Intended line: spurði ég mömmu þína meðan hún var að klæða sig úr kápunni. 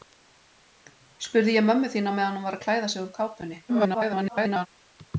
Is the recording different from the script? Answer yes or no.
yes